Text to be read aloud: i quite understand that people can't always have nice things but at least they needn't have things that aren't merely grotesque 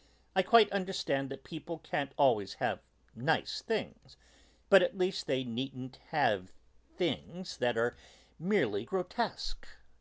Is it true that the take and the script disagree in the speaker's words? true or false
true